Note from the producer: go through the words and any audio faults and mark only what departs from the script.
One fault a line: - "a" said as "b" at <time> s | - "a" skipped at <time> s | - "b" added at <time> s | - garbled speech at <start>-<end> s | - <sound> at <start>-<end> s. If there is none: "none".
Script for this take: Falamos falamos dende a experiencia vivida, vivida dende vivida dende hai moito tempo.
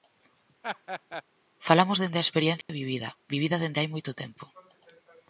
- laugh at 0.6-1.2 s
- "falamos" skipped at 2.0 s
- dropout at 2.6-2.7 s
- "vivida dende" skipped at 3.8 s